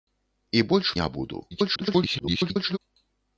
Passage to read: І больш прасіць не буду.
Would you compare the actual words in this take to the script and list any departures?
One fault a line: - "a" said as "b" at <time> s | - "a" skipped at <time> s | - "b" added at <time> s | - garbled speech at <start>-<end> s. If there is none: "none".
- "прасіць" skipped at 0.9 s
- garbled speech at 1.5-2.8 s